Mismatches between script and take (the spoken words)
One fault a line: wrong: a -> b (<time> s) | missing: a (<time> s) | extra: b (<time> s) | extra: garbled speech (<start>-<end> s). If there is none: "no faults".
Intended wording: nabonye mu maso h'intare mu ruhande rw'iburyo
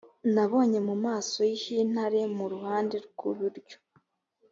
no faults